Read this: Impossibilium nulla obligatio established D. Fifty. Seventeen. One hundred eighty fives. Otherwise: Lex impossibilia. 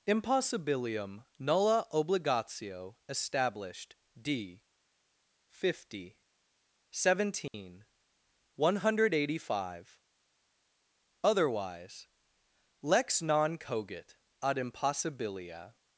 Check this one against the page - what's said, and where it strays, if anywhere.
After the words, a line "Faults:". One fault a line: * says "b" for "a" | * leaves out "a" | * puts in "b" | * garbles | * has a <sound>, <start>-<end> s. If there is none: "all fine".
Impossibilium nulla obligatio established D. Fifty. Seventeen. One hundred eighty five. Otherwise: Lex non cogit ad impossibilia.
Faults:
* has a dropout, 7.5-7.5 s
* says "five" for "fives"
* puts in "non cogit ad"